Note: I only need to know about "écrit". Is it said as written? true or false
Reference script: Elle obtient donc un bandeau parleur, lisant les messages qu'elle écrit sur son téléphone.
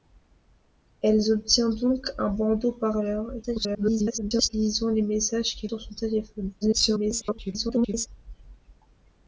false